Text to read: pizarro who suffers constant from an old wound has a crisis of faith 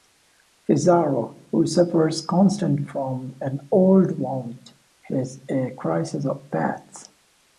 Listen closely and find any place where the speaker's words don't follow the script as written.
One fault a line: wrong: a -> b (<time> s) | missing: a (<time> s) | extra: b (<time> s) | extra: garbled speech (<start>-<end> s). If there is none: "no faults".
no faults